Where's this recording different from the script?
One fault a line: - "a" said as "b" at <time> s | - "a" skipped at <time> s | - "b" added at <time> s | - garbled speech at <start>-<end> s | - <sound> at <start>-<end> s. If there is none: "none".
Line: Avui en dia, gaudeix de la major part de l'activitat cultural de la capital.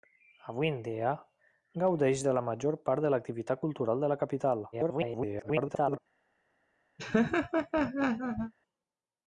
- garbled speech at 4.7-6.0 s
- laugh at 7.0-8.5 s